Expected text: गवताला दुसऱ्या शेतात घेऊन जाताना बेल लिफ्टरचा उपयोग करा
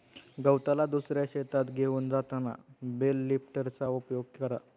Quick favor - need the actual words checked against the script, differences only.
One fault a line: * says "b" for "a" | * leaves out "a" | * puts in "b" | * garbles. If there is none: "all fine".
all fine